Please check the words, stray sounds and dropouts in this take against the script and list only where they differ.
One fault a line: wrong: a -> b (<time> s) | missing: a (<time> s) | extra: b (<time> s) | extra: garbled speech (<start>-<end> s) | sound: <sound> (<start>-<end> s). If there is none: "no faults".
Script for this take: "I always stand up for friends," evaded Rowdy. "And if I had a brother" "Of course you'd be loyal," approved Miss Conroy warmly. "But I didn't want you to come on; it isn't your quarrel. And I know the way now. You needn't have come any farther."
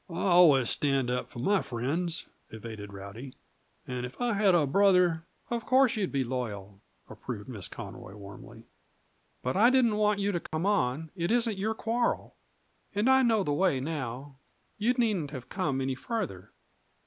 extra: my (1.4 s)
sound: dropout (10.5-10.5 s)